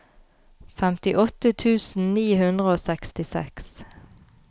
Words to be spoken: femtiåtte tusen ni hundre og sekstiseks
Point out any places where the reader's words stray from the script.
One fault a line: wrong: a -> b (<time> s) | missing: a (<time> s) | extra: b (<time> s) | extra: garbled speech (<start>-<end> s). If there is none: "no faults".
no faults